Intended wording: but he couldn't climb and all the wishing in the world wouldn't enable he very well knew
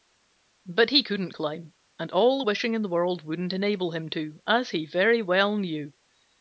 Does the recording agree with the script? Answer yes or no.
no